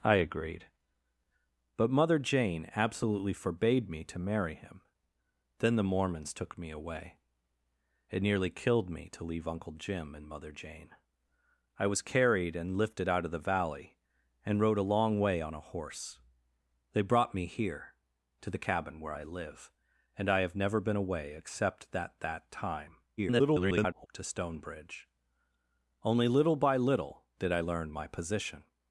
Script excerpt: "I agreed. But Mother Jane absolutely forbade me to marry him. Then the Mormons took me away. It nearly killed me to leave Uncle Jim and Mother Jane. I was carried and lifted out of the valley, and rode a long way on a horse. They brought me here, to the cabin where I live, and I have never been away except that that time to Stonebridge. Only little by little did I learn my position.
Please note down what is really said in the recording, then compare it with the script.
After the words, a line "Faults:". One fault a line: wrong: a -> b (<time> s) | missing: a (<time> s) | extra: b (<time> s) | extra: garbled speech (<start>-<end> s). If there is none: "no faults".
"I agreed. But Mother Jane absolutely forbade me to marry him. Then the Mormons took me away. It nearly killed me to leave Uncle Jim and Mother Jane. I was carried and lifted out of the valley, and rode a long way on a horse. They brought me here, to the cabin where I live, and I have never been away except that that time [garbled] to Stonebridge. Only little by little did I learn my position.
Faults:
extra: garbled speech (23.2-24.1 s)